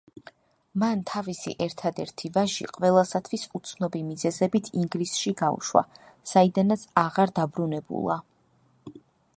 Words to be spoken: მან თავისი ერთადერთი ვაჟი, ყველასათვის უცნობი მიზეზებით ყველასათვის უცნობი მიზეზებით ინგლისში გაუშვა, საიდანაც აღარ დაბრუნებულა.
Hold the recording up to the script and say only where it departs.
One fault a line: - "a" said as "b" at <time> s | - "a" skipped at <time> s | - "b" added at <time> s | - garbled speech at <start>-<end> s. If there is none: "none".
- "ყველასათვის უცნობი მიზეზებით" skipped at 4.7 s